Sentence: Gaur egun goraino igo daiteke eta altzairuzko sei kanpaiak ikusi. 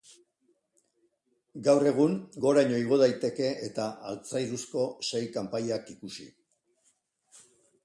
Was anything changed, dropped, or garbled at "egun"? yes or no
no